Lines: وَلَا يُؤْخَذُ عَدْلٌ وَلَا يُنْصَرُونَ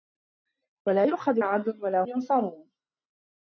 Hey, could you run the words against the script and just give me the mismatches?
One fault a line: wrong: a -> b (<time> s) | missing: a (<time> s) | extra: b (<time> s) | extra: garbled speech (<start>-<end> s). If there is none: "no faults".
no faults